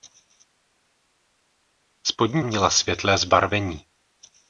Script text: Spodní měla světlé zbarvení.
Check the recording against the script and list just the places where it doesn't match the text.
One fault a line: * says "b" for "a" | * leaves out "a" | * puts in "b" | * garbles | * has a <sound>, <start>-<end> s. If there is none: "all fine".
all fine